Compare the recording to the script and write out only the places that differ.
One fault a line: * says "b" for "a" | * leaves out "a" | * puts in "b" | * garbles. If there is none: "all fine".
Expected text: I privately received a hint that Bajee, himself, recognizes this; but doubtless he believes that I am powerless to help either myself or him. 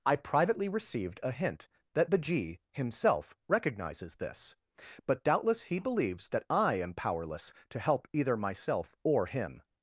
all fine